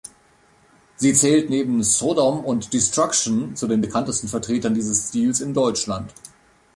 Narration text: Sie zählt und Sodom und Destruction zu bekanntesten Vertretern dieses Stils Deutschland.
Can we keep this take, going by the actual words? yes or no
no